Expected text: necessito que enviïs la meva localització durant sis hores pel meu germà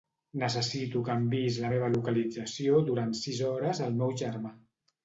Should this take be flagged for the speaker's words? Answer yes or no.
yes